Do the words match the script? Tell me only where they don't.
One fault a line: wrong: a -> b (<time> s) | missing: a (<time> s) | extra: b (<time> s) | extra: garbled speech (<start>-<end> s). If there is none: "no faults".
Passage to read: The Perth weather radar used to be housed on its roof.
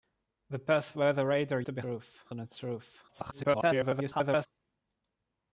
missing: used (1.6 s)
wrong: housed -> roof (1.8 s)
extra: garbled speech (3.1-4.5 s)